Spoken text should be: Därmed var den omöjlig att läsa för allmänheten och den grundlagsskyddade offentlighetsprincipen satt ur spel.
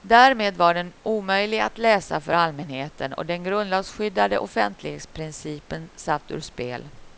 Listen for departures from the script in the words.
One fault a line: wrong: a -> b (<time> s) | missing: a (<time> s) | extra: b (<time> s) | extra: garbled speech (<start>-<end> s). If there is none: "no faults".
no faults